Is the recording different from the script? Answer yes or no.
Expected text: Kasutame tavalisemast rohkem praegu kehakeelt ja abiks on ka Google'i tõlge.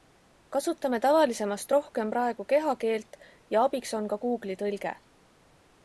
no